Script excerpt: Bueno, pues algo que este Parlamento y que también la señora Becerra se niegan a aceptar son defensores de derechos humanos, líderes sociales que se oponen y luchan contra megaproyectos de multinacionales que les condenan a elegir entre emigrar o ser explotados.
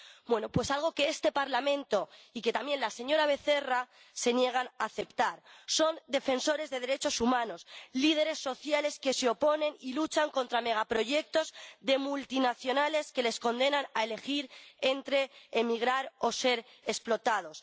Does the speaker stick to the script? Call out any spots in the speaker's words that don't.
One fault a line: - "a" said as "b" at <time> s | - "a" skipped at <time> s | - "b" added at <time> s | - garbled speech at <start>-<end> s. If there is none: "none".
none